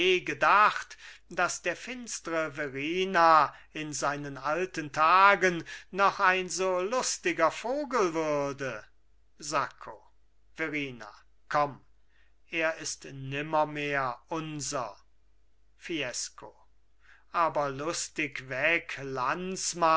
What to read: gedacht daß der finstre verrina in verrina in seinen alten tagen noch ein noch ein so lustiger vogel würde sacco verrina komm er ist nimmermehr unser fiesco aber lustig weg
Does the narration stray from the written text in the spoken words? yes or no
yes